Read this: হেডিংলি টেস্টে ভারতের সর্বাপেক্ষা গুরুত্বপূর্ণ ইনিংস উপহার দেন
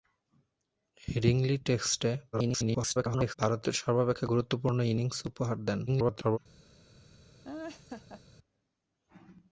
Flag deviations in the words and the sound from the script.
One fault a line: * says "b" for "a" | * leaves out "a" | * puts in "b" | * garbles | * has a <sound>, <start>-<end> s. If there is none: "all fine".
* garbles
* garbles
* has a laugh, 7.4-8.2 s